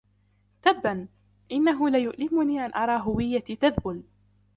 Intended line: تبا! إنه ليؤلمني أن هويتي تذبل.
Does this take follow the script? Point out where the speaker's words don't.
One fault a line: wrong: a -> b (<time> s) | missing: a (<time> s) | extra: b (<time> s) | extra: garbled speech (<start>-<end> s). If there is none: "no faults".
extra: أرى (2.8 s)